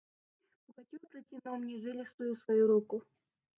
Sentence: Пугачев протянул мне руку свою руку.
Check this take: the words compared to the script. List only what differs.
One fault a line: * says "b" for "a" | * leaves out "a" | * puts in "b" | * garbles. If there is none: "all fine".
* says "жилистую" for "руку"